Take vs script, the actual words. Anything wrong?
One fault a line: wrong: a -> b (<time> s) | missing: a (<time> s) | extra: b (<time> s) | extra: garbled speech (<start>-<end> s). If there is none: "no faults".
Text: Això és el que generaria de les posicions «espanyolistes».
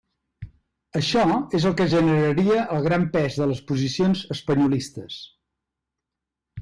extra: el gran pes (2.8 s)